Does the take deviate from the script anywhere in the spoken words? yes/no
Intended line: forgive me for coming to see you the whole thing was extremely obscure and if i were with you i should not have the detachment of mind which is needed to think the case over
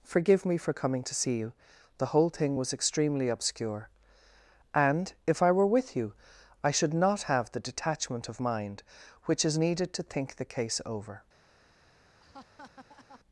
no